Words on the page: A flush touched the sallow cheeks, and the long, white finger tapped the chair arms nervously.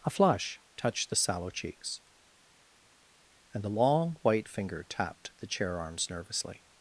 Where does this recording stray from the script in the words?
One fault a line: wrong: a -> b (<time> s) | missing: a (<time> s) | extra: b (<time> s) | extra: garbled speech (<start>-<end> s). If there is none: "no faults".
no faults